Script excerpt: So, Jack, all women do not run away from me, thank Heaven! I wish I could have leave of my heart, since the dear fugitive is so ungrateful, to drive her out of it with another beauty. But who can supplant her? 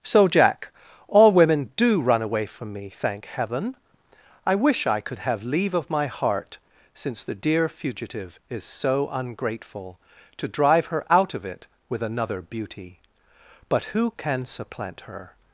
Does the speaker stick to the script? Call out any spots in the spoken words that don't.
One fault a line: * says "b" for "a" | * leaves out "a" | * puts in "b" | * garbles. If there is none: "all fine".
* leaves out "not"